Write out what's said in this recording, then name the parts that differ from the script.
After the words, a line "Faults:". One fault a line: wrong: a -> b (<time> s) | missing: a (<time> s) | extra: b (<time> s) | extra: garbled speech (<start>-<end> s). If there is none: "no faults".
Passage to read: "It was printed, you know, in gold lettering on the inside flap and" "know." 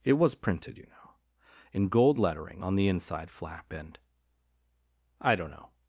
"It was printed, you know, in gold lettering on the inside flap and" "I don't know."
Faults:
extra: I don't (5.2 s)